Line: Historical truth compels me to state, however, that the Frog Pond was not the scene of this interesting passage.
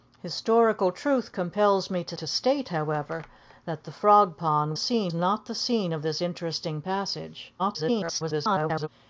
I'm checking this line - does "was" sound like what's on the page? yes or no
no